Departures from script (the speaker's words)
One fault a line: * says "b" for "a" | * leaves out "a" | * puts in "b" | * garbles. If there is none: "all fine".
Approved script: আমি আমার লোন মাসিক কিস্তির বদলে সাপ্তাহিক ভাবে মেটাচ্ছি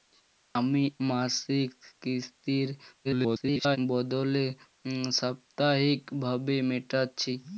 * leaves out "আমার লোন"
* garbles